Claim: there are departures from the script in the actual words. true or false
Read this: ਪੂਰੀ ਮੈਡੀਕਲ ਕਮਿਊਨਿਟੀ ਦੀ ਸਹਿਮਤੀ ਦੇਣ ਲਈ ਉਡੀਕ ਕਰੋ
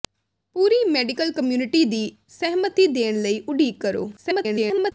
true